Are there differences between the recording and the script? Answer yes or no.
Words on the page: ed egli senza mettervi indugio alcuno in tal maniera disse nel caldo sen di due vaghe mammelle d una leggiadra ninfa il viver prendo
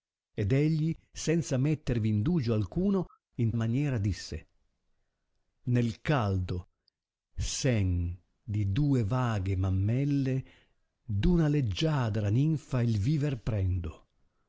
yes